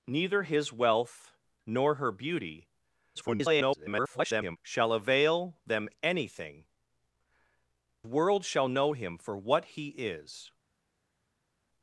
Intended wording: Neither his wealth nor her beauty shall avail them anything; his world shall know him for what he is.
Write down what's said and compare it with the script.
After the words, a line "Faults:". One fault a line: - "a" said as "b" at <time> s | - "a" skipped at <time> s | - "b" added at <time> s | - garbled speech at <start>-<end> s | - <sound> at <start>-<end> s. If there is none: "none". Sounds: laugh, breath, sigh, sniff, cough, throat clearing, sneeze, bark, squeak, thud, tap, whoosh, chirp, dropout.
Neither his wealth nor her beauty [garbled] shall avail them anything; world shall know him for what he is.
Faults:
- garbled speech at 3.1-4.6 s
- "his" skipped at 6.7 s